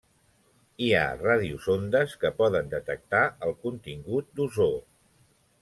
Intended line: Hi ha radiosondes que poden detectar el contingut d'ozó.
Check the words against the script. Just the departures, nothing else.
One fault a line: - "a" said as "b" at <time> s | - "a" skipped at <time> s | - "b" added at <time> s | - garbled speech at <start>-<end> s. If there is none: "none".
none